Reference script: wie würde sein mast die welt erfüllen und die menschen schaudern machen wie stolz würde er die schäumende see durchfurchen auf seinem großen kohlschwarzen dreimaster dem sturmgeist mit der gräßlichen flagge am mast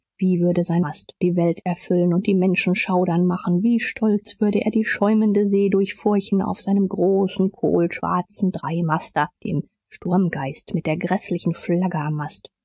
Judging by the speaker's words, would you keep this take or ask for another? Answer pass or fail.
pass